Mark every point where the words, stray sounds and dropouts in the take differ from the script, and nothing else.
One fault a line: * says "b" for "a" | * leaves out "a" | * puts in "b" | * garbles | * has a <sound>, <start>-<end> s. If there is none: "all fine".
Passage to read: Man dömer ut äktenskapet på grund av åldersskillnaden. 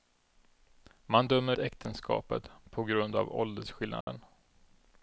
* leaves out "ut"
* has a dropout, 4.0-4.1 s